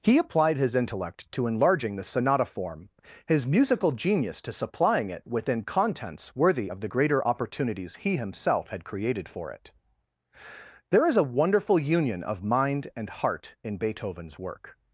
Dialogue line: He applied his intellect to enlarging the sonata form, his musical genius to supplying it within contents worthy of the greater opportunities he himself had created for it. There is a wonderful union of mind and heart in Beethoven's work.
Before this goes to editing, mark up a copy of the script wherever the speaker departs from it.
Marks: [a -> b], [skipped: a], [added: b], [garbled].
He applied his intellect to enlarging the sonata form, his musical genius to supplying it within contents worthy of the greater opportunities he himself had created for it. There is a wonderful union of mind and heart in Beethoven's work.